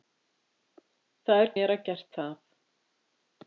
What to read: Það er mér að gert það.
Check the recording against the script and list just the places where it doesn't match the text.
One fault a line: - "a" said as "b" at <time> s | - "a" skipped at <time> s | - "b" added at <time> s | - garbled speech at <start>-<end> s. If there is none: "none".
none